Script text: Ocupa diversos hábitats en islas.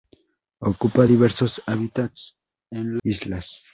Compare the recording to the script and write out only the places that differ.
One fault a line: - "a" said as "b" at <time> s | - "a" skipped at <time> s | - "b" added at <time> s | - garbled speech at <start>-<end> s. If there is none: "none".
none